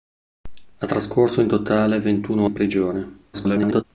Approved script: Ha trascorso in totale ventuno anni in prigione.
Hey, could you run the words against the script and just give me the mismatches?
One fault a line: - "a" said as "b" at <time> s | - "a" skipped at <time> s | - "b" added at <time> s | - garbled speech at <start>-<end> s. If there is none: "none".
- "anni" skipped at 2.5 s
- garbled speech at 3.3-3.8 s